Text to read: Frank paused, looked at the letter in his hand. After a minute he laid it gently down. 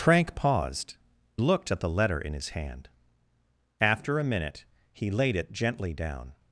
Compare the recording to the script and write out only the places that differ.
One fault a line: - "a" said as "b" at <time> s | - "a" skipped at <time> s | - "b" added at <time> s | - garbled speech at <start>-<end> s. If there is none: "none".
none